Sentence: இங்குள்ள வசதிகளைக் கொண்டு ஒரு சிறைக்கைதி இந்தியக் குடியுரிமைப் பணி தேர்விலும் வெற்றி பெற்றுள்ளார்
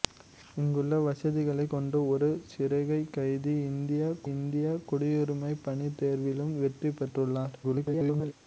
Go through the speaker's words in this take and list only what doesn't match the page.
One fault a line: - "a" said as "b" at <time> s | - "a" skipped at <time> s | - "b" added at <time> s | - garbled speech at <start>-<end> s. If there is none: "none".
- "இந்தியக்" added at 4.3 s
- garbled speech at 7.6-8.3 s